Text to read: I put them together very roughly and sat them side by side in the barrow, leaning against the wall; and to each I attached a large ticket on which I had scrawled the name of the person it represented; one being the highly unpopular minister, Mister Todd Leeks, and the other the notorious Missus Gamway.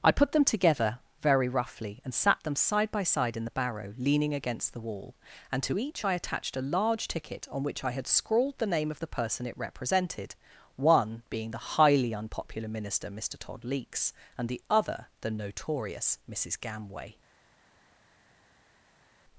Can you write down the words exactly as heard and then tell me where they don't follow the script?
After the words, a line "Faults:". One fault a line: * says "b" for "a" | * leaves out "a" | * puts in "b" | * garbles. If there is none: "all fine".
I put them together very roughly and sat them side by side in the barrow, leaning against the wall; and to each I attached a large ticket on which I had scrawled the name of the person it represented; one being the highly unpopular minister, Mister Todd Leeks, and the other the notorious Missus Gamway.
Faults:
all fine